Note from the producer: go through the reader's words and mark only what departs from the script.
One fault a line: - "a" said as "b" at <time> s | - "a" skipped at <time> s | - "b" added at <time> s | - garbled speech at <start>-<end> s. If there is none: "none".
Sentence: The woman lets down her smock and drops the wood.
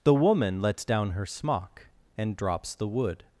none